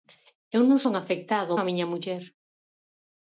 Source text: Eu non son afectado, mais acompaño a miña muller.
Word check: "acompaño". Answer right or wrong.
wrong